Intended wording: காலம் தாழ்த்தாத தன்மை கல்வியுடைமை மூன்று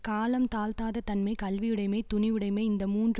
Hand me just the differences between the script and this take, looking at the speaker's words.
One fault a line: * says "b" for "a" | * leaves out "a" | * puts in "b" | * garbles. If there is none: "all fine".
* puts in "துணிவுடைமை இந்த"